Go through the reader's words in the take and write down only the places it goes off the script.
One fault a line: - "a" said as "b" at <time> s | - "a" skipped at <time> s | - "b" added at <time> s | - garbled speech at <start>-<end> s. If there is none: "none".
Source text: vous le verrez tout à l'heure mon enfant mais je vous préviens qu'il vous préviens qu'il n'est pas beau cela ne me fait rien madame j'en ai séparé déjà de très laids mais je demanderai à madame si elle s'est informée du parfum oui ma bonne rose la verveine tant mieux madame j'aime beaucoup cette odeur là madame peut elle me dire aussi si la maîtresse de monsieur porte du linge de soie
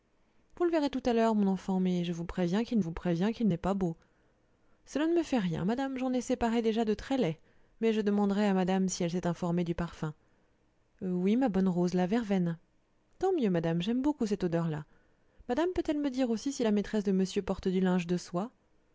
none